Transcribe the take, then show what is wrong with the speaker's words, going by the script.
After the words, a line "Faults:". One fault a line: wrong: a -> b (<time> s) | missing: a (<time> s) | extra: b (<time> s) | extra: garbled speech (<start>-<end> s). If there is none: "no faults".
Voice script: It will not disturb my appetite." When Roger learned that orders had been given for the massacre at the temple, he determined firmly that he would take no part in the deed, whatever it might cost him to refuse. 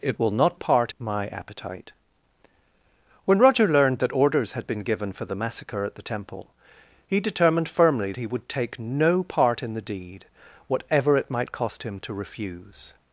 It will not part my appetite." When Roger learned that orders had been given for the massacre at the temple, he determined firmly he would take no part in the deed, whatever it might cost him to refuse.
Faults:
wrong: disturb -> part (0.5 s)
missing: that (8.1 s)